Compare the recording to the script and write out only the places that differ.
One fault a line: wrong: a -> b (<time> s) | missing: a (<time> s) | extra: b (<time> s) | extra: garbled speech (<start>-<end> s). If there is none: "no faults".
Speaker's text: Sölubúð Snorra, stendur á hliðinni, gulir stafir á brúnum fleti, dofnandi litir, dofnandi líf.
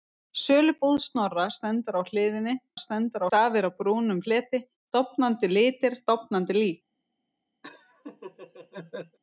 wrong: gulir -> stendur (2.8 s)